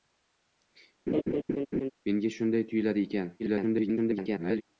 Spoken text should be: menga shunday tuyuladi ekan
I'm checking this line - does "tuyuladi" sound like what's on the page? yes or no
yes